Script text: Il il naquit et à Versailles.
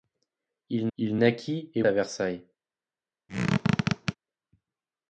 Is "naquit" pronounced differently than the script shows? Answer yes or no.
no